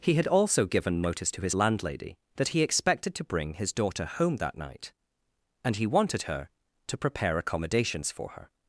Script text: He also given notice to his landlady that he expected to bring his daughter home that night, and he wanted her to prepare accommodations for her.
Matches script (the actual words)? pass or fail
fail